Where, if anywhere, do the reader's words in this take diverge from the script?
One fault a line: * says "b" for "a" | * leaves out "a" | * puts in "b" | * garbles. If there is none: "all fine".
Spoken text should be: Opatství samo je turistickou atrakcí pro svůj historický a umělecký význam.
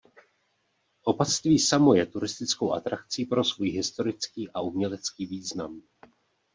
all fine